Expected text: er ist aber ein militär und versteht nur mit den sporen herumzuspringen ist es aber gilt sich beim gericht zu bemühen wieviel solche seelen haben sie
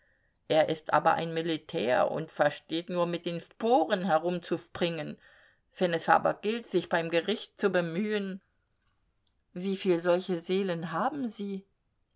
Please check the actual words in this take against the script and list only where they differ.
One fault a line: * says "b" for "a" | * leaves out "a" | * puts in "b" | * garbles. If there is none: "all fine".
* says "wenn" for "ist"